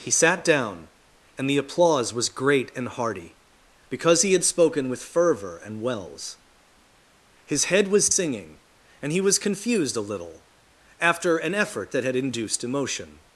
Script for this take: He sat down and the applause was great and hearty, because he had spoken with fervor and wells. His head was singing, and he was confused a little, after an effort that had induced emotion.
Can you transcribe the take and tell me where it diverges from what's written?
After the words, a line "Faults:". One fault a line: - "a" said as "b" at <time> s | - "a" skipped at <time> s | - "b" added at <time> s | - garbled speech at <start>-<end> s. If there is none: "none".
He sat down and the applause was great and hearty, because he had spoken with fervor and wells. His head was singing, and he was confused a little, after an effort that had induced emotion.
Faults:
none